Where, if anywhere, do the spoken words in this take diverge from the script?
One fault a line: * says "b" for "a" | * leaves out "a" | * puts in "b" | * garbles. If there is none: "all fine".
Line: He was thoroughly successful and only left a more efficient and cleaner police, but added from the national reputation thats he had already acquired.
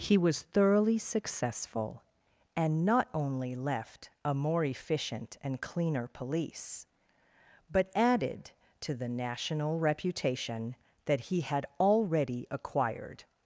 * puts in "not"
* says "to" for "from"
* says "that" for "thats"